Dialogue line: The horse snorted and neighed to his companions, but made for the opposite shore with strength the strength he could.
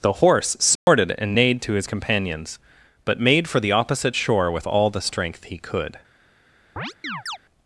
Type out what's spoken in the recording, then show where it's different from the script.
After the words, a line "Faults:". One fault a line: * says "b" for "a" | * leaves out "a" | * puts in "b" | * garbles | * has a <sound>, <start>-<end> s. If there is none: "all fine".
The horse snorted and neighed to his companions, but made for the opposite shore with all the strength he could.
Faults:
* has a dropout, 0.8-0.9 s
* says "all" for "strength"
* has a chirp, 6.8-7.4 s